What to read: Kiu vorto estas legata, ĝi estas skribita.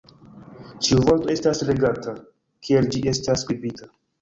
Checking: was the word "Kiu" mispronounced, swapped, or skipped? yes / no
yes